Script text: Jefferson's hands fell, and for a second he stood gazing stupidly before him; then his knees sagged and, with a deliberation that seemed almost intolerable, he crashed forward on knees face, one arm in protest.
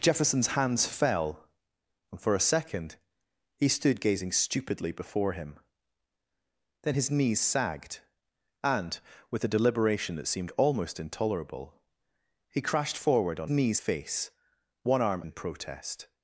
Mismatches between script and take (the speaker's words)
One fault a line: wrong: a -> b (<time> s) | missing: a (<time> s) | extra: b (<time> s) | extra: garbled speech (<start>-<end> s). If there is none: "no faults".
no faults